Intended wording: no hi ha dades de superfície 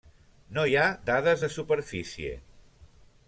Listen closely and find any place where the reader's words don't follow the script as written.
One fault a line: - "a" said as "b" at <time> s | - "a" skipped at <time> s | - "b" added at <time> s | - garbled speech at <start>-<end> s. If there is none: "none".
none